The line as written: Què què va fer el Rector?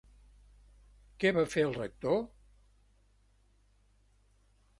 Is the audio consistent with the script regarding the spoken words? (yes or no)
no